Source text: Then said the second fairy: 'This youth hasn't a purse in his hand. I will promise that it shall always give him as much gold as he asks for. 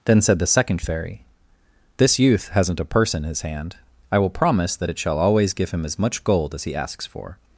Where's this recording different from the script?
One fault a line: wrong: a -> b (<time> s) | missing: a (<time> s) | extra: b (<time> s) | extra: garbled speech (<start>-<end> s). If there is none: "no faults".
no faults